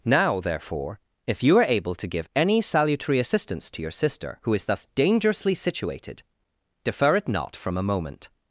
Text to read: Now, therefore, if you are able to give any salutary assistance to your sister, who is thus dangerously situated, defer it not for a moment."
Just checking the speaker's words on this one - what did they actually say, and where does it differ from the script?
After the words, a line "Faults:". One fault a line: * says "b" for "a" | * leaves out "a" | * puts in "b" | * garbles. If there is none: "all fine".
Now, therefore, if you are able to give any salutary assistance to your sister, who is thus dangerously situated, defer it not from a moment."
Faults:
* says "from" for "for"